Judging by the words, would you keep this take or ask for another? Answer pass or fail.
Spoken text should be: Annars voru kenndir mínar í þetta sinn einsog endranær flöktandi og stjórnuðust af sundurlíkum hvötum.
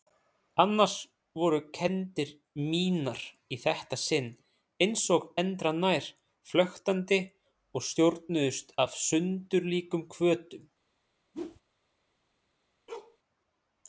pass